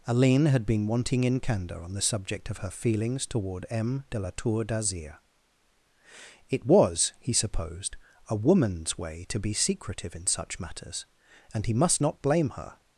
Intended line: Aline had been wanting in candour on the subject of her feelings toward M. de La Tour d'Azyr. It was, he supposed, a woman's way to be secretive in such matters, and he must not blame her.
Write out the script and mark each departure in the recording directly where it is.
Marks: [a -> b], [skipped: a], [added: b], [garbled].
Aline had been wanting in candour on the subject of her feelings toward M. de La Tour d'Azyr. It was, he supposed, a woman's way to be secretive in such matters, and he must not blame her.